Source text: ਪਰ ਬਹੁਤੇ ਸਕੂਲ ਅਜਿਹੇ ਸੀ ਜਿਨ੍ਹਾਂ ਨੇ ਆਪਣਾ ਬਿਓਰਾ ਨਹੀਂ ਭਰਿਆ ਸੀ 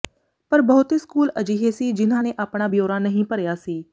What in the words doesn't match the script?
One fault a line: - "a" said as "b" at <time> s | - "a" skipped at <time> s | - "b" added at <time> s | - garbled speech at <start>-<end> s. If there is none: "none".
none